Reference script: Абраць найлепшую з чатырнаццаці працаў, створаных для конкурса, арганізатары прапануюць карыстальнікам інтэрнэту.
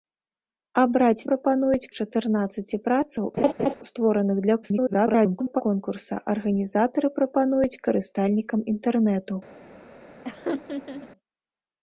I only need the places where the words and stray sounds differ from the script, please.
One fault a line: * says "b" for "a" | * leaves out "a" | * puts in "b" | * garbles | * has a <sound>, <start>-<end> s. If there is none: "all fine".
* says "прапануюць" for "найлепшую"
* has a laugh, 3.4-3.7 s
* garbles
* has a laugh, 10.2-11.1 s